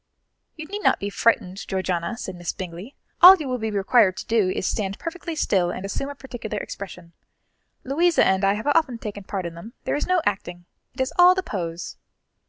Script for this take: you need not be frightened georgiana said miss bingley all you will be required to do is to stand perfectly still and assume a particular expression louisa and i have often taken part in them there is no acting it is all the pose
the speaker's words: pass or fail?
pass